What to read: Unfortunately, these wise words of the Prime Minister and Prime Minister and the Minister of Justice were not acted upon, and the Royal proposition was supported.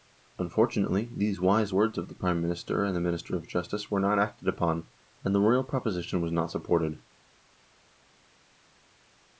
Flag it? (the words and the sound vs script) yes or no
yes